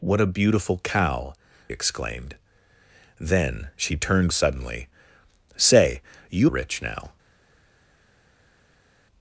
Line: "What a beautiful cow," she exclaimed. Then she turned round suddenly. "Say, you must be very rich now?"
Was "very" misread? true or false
true